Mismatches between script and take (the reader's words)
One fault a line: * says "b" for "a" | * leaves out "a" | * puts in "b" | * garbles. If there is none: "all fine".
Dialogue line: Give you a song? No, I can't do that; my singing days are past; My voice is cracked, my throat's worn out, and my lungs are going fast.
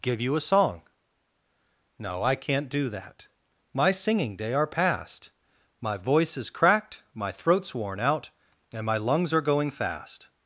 * says "day" for "days"